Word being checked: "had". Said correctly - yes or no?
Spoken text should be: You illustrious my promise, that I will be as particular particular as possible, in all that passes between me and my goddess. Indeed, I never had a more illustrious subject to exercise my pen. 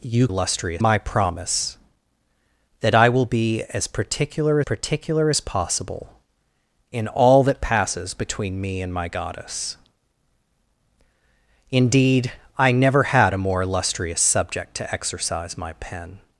yes